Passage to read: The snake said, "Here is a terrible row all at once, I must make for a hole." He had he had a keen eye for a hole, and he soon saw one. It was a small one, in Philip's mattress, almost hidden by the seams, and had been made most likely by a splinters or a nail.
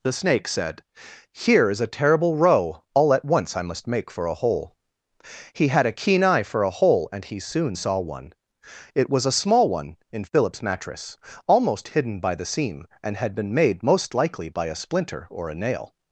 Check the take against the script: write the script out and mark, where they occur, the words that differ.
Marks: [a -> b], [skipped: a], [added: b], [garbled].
The snake said, "Here is a terrible row all at once, I must make for a hole." He had [skipped: he had] a keen eye for a hole, and he soon saw one. It was a small one, in Philip's mattress, almost hidden by the [seams, -> seam] and had been made most likely by a [splinters -> splinter] or a nail.